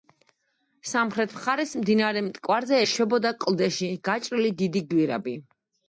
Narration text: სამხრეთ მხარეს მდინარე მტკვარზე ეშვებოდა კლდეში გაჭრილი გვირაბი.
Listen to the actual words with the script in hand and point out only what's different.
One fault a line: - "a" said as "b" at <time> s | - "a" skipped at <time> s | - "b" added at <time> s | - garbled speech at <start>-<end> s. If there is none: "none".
- "დიდი" added at 4.6 s